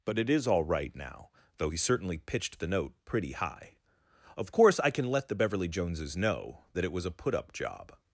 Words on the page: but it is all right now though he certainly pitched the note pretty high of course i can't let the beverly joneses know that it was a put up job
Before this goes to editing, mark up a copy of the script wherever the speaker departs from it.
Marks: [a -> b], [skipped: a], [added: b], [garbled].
but it is all right now though he certainly pitched the note pretty high of course i [can't -> can] let the beverly joneses know that it was a put up job